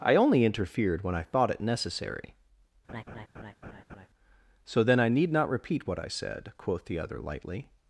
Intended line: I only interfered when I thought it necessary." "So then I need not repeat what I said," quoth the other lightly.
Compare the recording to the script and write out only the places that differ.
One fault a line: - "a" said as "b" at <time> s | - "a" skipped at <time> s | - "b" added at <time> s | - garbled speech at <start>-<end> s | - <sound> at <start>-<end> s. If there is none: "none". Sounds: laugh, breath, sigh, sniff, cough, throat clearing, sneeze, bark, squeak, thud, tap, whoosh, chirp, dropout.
- laugh at 2.9-4.1 s